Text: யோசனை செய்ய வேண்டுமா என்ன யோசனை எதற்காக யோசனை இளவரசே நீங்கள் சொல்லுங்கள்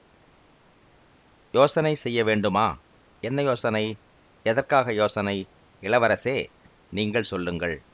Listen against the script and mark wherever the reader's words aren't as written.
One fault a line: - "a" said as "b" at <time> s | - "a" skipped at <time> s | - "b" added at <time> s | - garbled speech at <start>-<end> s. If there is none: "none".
none